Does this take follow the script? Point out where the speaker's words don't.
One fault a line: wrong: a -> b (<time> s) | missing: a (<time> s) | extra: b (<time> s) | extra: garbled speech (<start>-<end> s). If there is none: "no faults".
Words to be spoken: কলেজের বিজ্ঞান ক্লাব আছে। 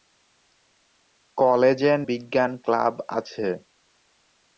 no faults